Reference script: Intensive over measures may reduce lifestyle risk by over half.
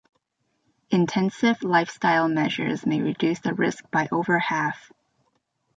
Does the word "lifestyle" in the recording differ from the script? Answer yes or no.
yes